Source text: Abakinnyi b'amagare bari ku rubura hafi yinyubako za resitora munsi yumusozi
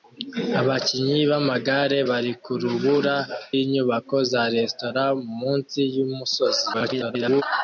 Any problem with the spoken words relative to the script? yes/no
yes